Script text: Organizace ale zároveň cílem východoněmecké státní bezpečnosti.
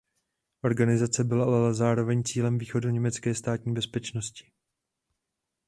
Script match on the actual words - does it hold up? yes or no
no